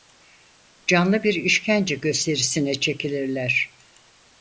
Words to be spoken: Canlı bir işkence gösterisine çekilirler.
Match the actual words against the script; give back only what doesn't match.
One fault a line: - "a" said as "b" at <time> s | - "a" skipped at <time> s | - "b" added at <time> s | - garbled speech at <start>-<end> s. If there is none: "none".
none